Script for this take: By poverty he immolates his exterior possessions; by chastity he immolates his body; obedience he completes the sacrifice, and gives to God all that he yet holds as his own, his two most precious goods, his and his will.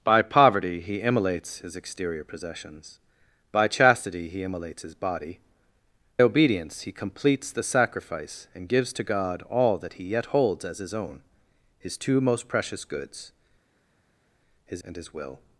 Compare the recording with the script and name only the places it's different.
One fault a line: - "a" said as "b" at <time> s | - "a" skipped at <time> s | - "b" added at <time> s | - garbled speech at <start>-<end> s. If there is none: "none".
none